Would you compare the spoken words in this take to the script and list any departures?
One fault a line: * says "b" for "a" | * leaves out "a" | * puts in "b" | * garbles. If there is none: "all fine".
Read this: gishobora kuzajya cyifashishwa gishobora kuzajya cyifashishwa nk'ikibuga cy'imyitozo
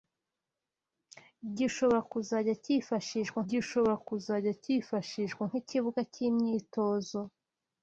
all fine